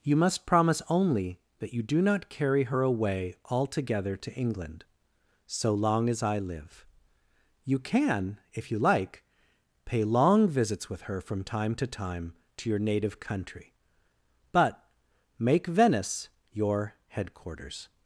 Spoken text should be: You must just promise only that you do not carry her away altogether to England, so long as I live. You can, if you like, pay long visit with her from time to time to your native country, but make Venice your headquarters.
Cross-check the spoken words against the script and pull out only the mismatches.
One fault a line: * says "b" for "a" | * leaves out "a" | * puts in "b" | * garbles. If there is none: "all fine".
* leaves out "just"
* says "visits" for "visit"